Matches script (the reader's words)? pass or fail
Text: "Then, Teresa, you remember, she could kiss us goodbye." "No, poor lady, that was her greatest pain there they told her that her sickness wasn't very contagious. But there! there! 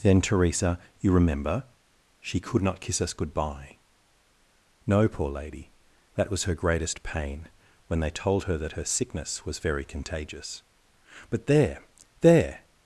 fail